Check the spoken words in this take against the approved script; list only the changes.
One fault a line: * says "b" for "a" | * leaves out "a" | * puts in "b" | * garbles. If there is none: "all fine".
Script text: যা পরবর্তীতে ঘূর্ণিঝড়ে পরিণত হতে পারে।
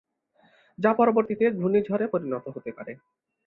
all fine